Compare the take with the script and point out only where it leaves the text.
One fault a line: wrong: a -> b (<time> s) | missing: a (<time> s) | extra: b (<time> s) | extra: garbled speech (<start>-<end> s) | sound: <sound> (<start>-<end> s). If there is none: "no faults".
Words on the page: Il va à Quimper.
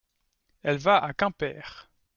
wrong: Il -> Elle (0.6 s)